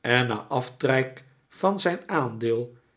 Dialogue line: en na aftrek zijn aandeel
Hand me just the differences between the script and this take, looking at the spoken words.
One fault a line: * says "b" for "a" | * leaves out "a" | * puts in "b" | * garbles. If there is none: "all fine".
* puts in "van"